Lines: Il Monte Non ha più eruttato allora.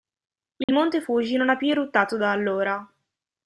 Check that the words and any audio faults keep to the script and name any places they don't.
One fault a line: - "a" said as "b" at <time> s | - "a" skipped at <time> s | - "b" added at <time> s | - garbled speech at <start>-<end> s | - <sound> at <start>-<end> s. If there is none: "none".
- dropout at 0.6-0.7 s
- "Fuji" added at 1.0 s
- "da" added at 2.2 s